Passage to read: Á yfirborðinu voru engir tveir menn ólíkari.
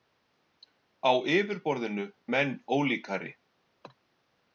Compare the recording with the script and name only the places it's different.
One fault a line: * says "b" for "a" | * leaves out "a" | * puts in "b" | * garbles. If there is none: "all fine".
* leaves out "voru engir tveir"